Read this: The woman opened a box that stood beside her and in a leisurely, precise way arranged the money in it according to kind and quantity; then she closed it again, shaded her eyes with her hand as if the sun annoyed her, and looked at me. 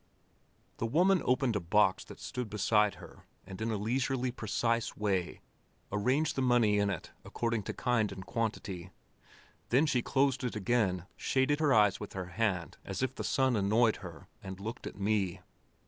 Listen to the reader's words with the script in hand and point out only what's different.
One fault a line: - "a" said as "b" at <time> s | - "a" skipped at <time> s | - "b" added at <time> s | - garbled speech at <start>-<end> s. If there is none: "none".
none